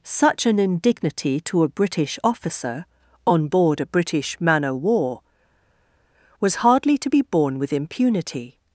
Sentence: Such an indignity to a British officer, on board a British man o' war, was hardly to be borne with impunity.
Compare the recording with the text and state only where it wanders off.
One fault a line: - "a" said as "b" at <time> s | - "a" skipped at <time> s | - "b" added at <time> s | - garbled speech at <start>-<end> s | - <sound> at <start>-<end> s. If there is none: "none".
none